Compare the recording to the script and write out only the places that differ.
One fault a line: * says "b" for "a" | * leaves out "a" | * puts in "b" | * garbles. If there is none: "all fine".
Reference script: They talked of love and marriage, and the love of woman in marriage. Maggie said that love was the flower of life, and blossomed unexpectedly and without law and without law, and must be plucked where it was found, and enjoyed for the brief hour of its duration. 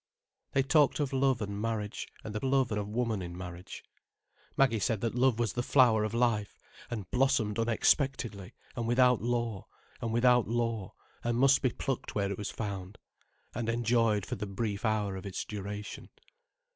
all fine